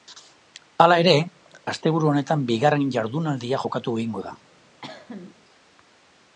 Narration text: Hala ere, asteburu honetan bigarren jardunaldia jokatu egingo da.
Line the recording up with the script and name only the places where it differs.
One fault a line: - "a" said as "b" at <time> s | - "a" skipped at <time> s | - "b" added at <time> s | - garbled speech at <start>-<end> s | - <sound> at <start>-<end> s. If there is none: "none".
- cough at 4.8-5.3 s